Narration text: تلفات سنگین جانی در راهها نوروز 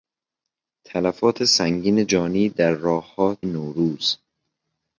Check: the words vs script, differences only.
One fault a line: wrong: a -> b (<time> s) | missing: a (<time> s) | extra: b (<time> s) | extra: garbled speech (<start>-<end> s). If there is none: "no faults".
no faults